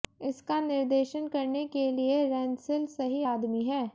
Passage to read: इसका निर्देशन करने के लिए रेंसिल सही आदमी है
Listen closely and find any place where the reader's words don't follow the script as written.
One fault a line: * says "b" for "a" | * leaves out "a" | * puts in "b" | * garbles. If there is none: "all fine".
all fine